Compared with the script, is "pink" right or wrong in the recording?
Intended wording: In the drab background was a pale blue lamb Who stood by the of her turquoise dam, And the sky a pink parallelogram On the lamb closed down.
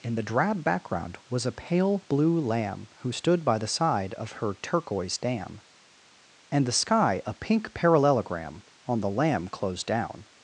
right